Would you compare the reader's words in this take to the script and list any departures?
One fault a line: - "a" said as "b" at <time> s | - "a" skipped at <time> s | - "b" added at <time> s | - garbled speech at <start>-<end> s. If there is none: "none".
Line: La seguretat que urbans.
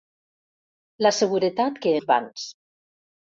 none